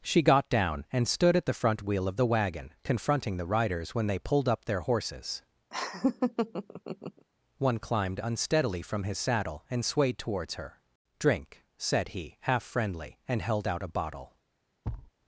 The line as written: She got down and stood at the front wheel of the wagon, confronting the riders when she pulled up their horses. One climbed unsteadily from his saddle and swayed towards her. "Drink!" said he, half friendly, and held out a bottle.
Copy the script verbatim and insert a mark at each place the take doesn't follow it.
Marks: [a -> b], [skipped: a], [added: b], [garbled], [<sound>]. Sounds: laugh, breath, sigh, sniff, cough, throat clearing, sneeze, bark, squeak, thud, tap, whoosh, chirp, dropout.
She got down and stood at the front wheel of the wagon, confronting the riders when [she -> they] pulled up their horses. [laugh] One climbed unsteadily from his saddle and swayed towards her. "Drink!" said he, half friendly, and held out a bottle. [thud]